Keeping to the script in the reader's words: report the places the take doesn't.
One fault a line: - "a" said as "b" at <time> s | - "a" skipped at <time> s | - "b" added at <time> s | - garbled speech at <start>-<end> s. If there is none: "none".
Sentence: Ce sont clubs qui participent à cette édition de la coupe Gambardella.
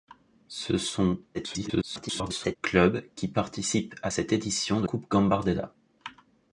- garbled speech at 1.3-2.6 s
- "la" skipped at 4.9 s